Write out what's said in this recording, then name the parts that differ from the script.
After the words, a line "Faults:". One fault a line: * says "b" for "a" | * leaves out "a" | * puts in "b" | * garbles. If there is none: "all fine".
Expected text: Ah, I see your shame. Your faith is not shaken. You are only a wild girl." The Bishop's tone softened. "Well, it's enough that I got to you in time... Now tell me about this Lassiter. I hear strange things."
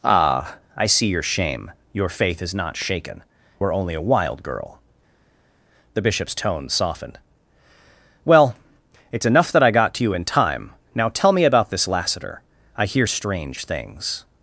Ah, I see your shame. Your faith is not shaken. Are only a wild girl." The Bishop's tone softened. "Well, it's enough that I got to you in time... Now tell me about this Lassiter. I hear strange things."
Faults:
* leaves out "You"